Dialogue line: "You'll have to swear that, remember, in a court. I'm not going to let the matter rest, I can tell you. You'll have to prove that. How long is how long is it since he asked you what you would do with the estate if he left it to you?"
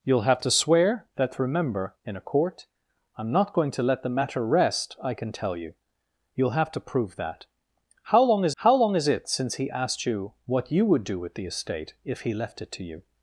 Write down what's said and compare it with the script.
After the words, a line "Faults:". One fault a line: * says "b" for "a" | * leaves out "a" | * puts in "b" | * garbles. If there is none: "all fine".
"You'll have to swear that, remember, in a court. I'm not going to let the matter rest, I can tell you. You'll have to prove that. How long is how long is it since he asked you what you would do with the estate if he left it to you?"
Faults:
all fine